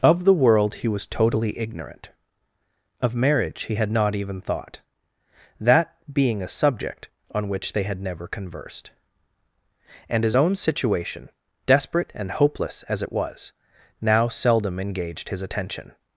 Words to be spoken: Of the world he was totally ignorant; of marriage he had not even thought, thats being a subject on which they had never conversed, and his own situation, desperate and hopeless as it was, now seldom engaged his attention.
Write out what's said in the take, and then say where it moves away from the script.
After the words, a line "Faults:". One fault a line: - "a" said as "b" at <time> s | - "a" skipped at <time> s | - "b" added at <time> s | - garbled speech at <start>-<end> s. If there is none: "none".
Of the world he was totally ignorant; of marriage he had not even thought, that being a subject on which they had never conversed, and his own situation, desperate and hopeless as it was, now seldom engaged his attention.
Faults:
- "thats" said as "that" at 5.6 s